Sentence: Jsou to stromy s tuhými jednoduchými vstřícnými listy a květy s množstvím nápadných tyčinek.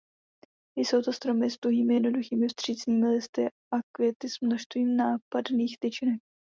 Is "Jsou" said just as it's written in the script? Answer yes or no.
yes